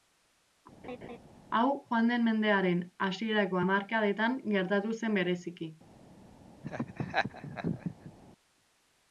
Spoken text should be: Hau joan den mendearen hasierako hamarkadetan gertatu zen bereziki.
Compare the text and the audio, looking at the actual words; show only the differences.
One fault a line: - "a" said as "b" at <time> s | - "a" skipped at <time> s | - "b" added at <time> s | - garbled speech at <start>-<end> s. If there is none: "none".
none